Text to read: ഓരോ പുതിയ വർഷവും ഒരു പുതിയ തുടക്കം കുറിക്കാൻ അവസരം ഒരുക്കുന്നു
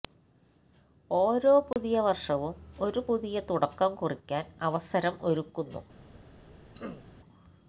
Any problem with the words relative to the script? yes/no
no